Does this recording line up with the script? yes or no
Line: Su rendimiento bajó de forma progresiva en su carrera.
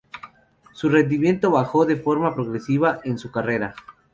yes